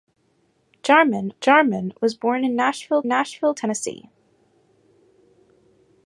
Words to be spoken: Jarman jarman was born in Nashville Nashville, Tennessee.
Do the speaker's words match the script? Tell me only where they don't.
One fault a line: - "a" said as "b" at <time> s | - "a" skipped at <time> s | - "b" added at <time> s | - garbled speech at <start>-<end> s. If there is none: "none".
none